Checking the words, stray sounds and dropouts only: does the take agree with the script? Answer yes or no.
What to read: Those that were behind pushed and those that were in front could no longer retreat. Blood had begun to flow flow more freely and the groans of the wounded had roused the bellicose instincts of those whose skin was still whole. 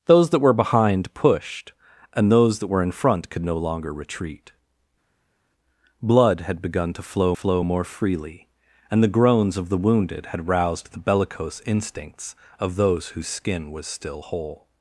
yes